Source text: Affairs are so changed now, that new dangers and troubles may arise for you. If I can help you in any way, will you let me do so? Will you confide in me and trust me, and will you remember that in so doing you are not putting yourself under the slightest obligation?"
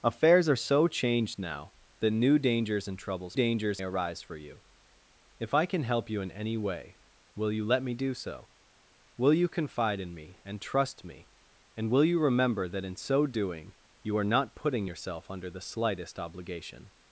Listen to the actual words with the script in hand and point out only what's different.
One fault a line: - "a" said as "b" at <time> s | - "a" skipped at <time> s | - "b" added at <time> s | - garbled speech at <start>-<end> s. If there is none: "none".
- "may" said as "dangers" at 3.3 s